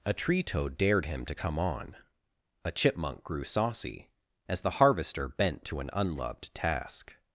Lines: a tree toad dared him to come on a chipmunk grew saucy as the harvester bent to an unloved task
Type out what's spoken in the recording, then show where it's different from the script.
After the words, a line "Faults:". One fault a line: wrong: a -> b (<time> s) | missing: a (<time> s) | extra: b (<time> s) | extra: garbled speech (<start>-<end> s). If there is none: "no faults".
a tree toad dared him to come on a chipmunk grew saucy as the harvester bent to an unloved task
Faults:
no faults